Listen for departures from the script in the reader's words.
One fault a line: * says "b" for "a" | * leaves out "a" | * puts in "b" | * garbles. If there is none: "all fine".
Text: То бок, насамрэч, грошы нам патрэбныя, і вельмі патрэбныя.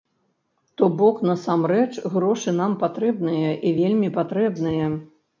all fine